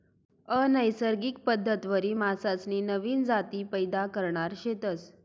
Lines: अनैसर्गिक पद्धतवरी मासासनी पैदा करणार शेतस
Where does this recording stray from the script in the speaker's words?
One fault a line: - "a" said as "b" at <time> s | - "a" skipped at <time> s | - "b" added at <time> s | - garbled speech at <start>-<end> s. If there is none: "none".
- "नवीन जाती" added at 2.8 s